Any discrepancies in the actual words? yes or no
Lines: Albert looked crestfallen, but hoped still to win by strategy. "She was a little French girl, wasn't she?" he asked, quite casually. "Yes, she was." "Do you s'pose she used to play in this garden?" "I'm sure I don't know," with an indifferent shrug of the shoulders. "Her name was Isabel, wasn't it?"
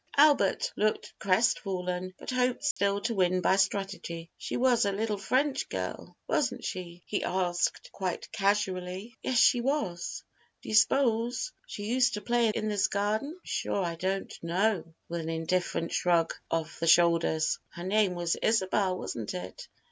no